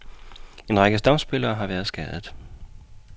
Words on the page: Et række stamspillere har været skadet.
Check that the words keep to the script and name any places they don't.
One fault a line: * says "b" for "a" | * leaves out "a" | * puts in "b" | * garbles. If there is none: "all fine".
* says "En" for "Et"